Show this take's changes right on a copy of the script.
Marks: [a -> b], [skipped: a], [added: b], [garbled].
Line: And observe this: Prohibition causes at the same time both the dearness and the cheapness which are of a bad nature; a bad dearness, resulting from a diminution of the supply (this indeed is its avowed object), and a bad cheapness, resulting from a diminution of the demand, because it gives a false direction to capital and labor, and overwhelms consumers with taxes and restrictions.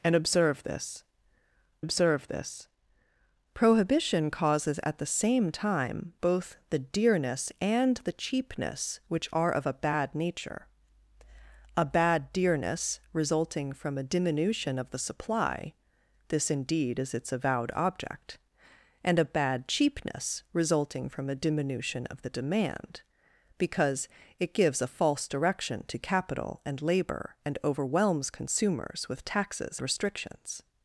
And observe this: [added: observe this] Prohibition causes at the same time both the dearness and the cheapness which are of a bad nature; a bad dearness, resulting from a diminution of the supply (this indeed is its avowed object), and a bad cheapness, resulting from a diminution of the demand, because it gives a false direction to capital and labor, and overwhelms consumers with taxes [skipped: and] restrictions.